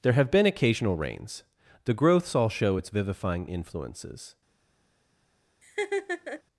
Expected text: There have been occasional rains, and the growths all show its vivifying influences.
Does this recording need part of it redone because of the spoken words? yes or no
yes